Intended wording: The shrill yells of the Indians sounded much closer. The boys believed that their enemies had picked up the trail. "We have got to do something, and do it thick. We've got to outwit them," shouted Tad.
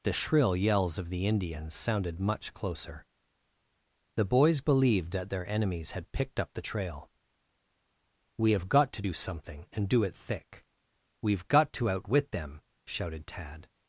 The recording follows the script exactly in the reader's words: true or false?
true